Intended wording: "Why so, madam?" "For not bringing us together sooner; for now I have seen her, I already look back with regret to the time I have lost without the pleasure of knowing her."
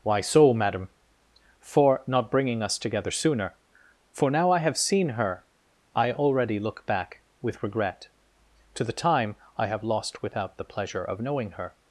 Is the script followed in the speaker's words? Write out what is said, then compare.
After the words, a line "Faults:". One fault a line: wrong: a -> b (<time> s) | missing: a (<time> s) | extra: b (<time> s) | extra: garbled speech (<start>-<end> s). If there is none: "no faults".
"Why so, madam?" "For not bringing us together sooner; for now I have seen her, I already look back with regret to the time I have lost without the pleasure of knowing her."
Faults:
no faults